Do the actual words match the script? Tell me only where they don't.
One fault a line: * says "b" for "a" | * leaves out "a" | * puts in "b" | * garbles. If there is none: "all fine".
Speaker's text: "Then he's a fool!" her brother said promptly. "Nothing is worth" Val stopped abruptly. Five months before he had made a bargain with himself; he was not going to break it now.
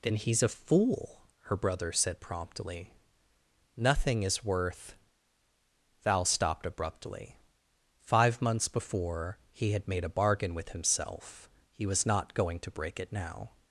all fine